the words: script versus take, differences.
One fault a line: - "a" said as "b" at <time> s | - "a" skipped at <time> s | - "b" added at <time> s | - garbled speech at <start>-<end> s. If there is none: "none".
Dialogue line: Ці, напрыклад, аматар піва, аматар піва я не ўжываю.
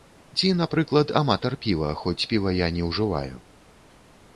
- "аматар" said as "хоць" at 2.0 s